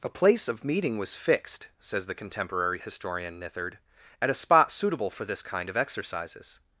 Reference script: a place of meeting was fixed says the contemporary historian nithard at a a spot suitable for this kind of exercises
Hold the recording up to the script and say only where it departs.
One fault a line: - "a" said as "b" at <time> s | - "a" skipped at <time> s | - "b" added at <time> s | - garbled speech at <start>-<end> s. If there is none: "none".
- "a" skipped at 4.4 s